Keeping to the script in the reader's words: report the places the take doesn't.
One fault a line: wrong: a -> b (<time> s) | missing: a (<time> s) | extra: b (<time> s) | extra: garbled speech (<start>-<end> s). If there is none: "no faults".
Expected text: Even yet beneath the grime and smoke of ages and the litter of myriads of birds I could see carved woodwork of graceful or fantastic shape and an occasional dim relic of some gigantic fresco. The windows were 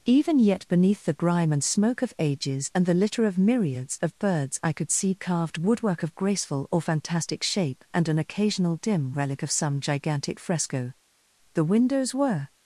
no faults